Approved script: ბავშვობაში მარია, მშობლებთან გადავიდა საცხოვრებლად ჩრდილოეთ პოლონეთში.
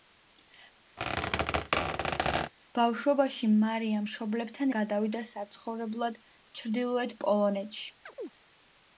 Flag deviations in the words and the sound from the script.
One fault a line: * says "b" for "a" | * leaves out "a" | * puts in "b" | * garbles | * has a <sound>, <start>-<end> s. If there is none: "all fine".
* has a squeak, 1.0-2.5 s
* has a chirp, 8.1-8.3 s